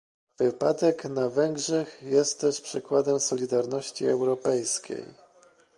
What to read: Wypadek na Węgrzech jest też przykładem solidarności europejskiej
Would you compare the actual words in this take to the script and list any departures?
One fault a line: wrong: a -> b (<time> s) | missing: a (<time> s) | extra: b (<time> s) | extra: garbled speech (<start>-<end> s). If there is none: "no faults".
no faults